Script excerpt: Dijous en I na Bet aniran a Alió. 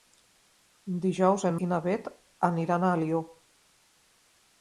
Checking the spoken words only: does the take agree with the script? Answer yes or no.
yes